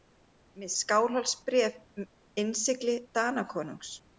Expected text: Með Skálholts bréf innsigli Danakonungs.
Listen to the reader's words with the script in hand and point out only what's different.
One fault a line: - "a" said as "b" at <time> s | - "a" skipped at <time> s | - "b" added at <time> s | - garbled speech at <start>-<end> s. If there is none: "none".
none